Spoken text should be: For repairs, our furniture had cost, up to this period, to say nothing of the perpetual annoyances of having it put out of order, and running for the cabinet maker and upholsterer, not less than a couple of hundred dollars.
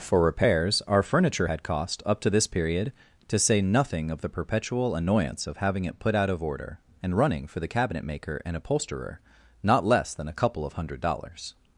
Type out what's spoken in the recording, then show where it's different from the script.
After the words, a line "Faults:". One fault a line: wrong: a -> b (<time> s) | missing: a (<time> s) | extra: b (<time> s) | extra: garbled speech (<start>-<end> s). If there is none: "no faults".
For repairs, our furniture had cost, up to this period, to say nothing of the perpetual annoyance of having it put out of order, and running for the cabinet maker and upholsterer, not less than a couple of hundred dollars.
Faults:
wrong: annoyances -> annoyance (4.9 s)